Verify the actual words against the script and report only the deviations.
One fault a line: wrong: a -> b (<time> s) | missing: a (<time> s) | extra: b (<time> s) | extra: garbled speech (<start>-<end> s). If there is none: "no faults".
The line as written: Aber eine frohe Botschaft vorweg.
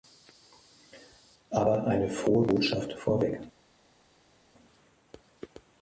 no faults